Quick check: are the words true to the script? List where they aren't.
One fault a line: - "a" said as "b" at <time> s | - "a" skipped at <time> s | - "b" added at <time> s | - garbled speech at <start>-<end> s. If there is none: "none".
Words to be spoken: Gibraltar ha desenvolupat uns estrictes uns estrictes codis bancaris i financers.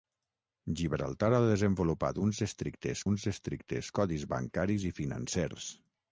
none